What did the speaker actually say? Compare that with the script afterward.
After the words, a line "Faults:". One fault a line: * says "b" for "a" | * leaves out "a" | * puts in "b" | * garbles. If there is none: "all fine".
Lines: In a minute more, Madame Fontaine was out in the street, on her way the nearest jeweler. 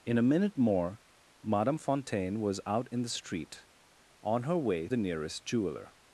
In a minute more, Madame Fontaine was out in the street, on her way the nearest jeweler.
Faults:
all fine